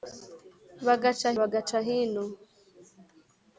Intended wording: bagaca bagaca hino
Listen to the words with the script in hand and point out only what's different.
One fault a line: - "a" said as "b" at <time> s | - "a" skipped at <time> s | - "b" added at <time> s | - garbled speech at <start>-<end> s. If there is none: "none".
none